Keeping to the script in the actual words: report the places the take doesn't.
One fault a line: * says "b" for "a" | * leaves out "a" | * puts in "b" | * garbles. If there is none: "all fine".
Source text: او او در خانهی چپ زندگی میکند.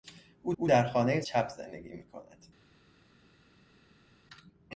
all fine